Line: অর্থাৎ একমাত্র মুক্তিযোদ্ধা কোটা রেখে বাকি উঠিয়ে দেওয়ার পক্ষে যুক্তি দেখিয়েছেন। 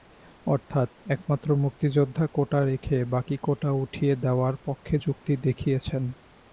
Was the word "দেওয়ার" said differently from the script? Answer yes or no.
no